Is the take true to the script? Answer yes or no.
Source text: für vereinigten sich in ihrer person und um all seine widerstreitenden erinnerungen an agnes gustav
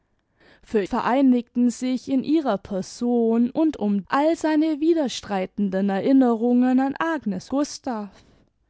yes